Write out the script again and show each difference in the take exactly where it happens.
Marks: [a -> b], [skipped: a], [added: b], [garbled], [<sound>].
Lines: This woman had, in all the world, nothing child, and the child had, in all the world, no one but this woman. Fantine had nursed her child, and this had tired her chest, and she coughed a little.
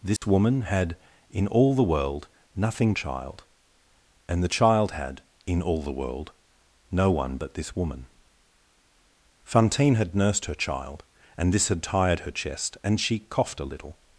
This [dropout] woman had, in all the world, nothing child, and the child had, in all the world, no one but this woman. Fantine had nursed her child, and this had tired her chest, and she coughed a little.